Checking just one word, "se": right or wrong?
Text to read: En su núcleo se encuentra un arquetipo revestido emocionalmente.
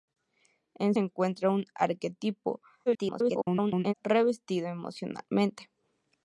wrong